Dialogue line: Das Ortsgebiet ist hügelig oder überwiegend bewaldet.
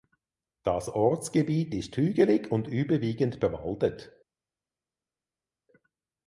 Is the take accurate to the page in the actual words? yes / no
no